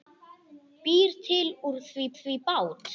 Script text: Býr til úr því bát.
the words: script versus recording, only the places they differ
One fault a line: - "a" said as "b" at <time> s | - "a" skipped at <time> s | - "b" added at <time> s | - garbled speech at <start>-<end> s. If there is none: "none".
- "því" added at 2.2 s